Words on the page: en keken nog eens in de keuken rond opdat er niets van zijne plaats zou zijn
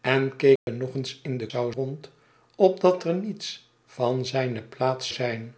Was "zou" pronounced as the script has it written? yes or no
no